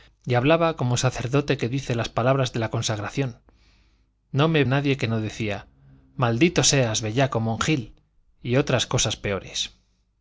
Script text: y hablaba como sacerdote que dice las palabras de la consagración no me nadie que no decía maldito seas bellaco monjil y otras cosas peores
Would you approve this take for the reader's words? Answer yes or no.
yes